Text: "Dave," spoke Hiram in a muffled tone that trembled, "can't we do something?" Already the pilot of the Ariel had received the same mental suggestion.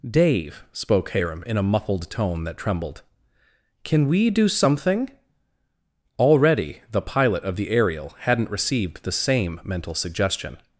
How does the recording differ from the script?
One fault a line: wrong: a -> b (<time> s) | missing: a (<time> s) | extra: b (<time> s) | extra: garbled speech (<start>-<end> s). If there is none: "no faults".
wrong: can't -> can (3.8 s)
wrong: had -> hadn't (8.2 s)